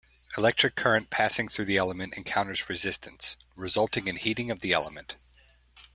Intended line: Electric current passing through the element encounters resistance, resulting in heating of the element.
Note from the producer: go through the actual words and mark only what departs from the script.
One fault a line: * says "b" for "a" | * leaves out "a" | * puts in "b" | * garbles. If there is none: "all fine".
all fine